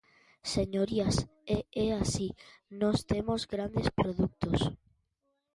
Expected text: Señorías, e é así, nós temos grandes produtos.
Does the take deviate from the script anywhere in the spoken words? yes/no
no